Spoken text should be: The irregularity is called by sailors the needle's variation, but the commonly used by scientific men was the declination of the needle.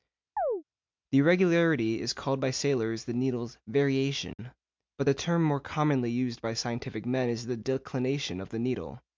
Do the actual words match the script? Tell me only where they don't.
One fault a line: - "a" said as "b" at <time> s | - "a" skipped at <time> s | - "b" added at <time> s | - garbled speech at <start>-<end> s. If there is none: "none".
- "term more" added at 5.1 s
- "was" said as "is" at 7.3 s